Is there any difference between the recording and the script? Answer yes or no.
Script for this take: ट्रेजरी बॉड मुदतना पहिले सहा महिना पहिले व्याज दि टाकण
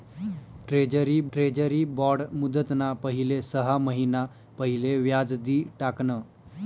yes